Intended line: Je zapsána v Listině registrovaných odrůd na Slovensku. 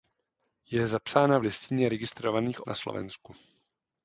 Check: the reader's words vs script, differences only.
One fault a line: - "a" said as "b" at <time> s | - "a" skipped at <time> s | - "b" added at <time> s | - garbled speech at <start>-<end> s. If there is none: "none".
- "odrůd" skipped at 2.7 s